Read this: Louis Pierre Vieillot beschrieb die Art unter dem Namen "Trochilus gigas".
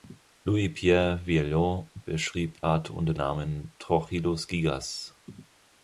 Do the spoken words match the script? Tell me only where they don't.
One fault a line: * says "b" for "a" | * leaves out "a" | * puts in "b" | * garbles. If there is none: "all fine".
* leaves out "die"
* leaves out "dem"